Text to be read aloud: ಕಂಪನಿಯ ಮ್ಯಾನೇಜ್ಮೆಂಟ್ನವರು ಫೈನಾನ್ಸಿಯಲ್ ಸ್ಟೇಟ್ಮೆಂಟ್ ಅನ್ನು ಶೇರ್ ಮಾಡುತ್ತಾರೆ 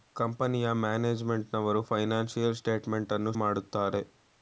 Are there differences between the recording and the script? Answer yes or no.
yes